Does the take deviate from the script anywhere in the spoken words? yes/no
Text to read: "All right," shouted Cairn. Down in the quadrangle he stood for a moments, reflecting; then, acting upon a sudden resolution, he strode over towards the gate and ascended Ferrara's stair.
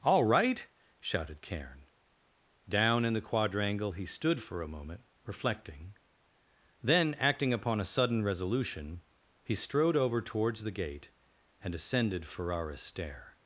yes